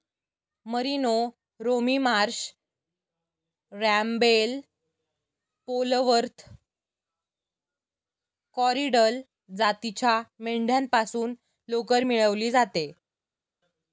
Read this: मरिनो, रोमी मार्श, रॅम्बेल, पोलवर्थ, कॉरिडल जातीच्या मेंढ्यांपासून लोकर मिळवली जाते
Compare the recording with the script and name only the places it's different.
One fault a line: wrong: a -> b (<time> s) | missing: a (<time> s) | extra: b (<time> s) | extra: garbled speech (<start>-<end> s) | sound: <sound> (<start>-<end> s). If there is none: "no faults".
no faults